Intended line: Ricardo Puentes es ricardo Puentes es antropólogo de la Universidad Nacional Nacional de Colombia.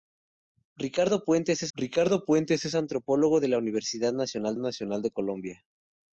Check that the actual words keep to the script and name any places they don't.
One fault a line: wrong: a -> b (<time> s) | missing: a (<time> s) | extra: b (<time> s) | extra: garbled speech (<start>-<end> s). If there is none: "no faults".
no faults